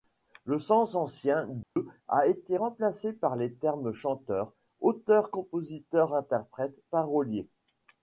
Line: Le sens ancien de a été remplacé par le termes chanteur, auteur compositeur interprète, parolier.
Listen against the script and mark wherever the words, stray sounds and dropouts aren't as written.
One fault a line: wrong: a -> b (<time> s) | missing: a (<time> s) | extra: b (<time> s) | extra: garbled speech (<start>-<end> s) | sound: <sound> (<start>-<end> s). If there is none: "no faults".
sound: dropout (1.6-1.8 s)
wrong: le -> les (3.3 s)